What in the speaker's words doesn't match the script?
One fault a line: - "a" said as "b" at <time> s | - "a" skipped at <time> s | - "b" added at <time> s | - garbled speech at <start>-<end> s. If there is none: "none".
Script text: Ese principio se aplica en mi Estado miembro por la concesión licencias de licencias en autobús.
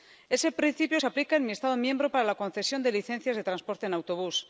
- "por" said as "para" at 2.1 s
- "de" added at 2.8 s
- "licencias" said as "transporte" at 3.5 s